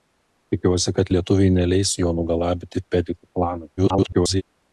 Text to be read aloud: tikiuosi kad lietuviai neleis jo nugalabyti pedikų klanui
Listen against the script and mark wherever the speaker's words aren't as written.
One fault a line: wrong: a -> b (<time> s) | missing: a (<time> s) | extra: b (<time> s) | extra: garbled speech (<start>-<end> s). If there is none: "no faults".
extra: garbled speech (3.8-4.4 s)